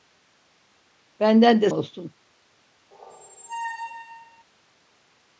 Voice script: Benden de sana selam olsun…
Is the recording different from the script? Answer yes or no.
yes